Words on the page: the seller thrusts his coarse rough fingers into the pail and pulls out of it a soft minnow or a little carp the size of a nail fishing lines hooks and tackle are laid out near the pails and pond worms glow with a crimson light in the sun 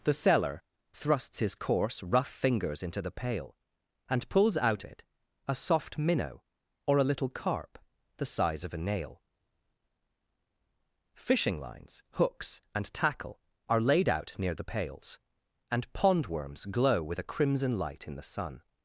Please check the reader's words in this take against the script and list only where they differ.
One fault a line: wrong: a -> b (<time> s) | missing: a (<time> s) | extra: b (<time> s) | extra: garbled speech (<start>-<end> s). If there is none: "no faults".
missing: of (4.8 s)